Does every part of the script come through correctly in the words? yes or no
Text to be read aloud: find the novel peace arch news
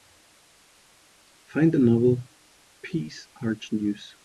yes